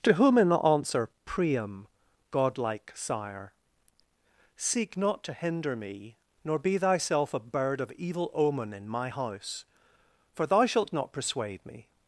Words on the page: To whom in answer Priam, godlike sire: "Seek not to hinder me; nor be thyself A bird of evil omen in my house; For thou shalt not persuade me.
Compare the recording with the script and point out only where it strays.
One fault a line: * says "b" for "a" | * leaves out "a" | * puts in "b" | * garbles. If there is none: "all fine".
all fine